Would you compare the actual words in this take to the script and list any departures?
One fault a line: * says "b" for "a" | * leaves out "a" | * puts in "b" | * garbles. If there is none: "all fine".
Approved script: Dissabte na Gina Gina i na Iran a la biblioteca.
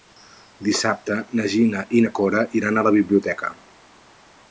* leaves out "Gina"
* puts in "Cora"